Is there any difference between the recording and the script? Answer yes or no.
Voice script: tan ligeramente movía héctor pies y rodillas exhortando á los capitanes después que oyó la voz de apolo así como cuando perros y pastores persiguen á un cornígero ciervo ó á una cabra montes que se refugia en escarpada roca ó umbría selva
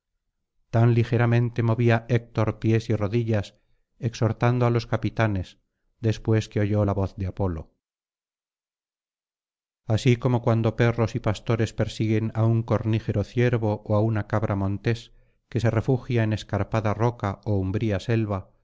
no